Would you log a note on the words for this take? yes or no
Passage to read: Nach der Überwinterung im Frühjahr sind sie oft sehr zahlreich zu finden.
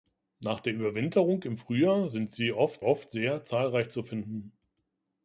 yes